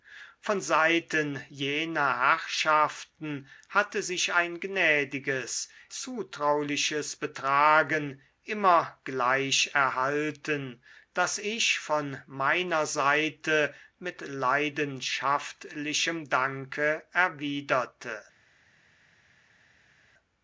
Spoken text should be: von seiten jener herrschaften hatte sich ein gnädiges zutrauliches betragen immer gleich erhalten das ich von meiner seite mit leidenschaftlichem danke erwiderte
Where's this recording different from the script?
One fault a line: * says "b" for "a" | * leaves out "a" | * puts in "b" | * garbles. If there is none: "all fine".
all fine